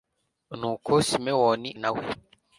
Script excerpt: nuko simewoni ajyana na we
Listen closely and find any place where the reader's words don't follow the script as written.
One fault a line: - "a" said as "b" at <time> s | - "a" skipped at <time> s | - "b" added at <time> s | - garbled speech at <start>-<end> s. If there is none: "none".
- "ajyana" skipped at 1.7 s